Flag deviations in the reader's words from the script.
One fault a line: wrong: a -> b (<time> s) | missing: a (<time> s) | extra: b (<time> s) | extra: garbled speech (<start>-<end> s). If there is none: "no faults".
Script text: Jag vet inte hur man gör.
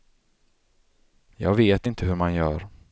no faults